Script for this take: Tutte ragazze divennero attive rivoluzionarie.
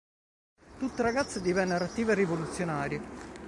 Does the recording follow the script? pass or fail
pass